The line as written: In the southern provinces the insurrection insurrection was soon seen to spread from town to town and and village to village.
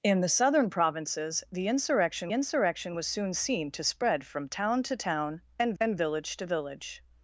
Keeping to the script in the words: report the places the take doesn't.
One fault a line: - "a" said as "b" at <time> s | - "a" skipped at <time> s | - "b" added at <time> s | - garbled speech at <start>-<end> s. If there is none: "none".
none